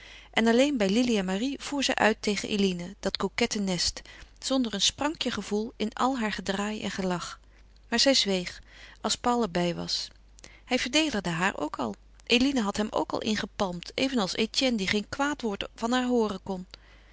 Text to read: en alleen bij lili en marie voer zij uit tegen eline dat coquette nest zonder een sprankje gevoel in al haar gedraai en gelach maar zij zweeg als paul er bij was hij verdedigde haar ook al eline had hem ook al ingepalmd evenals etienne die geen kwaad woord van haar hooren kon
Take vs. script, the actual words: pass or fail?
pass